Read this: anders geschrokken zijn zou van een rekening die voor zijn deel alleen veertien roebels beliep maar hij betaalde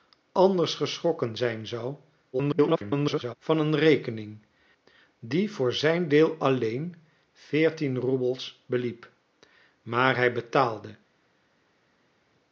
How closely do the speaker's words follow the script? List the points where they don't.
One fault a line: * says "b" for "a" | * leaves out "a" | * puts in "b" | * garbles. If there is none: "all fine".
* garbles